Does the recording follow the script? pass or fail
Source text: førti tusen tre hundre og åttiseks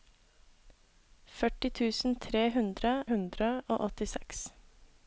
fail